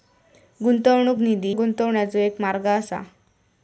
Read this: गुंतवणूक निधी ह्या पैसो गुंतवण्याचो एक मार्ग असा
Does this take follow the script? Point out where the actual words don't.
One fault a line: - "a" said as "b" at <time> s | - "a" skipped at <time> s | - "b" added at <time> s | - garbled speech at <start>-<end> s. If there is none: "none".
- "ह्या पैसो" skipped at 1.5 s